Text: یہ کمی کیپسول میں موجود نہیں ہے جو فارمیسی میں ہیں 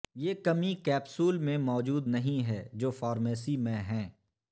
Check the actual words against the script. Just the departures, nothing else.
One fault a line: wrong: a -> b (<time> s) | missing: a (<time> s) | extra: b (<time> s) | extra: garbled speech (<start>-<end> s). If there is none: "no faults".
no faults